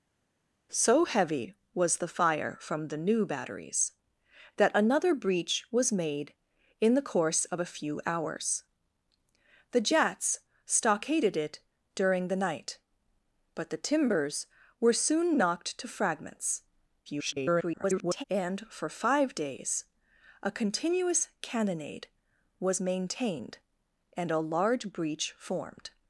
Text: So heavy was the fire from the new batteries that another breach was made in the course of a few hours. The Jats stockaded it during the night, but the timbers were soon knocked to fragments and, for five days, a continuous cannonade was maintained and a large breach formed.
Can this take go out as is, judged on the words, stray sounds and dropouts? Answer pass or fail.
fail